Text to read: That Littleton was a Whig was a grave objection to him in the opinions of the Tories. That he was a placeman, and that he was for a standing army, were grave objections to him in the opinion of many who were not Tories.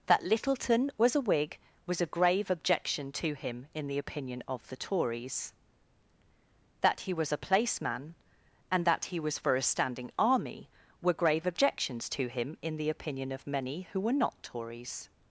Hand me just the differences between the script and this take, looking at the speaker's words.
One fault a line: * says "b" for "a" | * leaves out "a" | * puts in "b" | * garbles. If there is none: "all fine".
* says "opinion" for "opinions"